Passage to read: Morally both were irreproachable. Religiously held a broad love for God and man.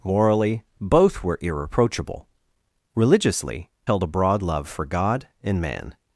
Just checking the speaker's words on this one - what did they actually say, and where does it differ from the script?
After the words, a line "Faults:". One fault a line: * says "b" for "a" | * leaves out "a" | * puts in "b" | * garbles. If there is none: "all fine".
Morally both were irreproachable. Religiously held a broad love for God and man.
Faults:
all fine